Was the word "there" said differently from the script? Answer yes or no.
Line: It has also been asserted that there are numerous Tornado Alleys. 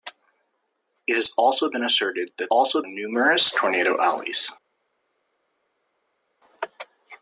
yes